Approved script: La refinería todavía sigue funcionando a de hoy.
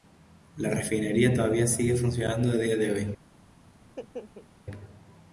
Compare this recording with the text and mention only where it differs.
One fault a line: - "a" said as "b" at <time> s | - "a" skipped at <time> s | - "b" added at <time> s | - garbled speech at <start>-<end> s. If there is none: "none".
- "día" added at 2.5 s